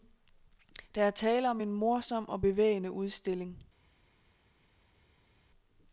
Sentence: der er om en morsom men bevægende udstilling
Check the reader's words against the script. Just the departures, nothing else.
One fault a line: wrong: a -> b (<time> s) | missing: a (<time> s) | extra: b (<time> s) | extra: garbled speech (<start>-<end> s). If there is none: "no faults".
extra: tale (1.1 s)
wrong: men -> og (2.3 s)